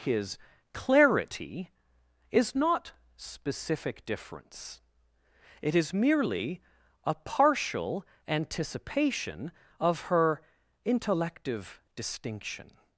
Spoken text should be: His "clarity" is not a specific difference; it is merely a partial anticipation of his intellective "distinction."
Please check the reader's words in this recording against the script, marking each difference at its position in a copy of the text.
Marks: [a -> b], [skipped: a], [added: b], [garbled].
His "clarity" is not [skipped: a] specific difference; it is merely a partial anticipation of [his -> her] intellective "distinction."